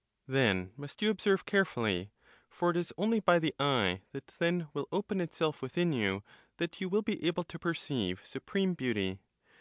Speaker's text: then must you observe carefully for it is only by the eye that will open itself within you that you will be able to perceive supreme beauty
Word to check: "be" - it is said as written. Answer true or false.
true